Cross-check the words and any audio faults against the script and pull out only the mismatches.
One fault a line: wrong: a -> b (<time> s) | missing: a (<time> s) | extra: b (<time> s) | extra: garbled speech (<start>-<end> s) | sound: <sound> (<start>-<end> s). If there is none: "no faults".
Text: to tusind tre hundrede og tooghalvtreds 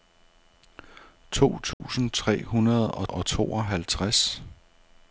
sound: dropout (1.7-1.8 s)
extra: og (3.1 s)